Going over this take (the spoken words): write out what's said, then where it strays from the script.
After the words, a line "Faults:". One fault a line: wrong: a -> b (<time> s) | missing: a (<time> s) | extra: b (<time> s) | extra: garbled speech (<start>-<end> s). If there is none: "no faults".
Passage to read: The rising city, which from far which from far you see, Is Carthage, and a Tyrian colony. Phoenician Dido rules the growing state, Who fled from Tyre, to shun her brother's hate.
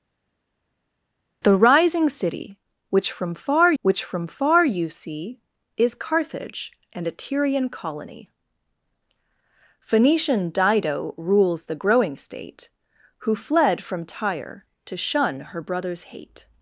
The rising city, which from far which from far you see, Is Carthage, and a Tyrian colony. Phoenician Dido rules the growing state, Who fled from Tyre, to shun her brother's hate.
Faults:
no faults